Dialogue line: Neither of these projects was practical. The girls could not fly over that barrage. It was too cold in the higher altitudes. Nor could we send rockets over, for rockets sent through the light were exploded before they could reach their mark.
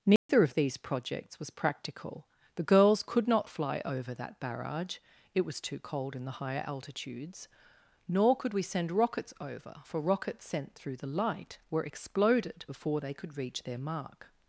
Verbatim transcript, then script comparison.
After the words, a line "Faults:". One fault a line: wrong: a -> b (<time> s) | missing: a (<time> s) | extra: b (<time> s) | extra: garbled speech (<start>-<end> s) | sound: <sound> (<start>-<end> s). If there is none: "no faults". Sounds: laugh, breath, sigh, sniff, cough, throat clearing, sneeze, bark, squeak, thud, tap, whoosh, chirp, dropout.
Neither of these projects was practical. The girls could not fly over that barrage. It was too cold in the higher altitudes. Nor could we send rockets over, for rockets sent through the light were exploded before they could reach their mark.
Faults:
sound: dropout (0.2-0.3 s)